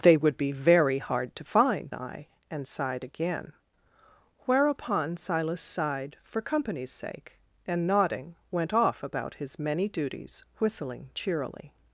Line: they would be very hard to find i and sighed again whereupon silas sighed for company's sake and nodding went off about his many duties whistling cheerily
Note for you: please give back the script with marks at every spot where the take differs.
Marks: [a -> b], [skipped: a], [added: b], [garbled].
they would be very hard to find i and sighed again whereupon silas sighed for company's sake and nodding went off about his many duties whistling cheerily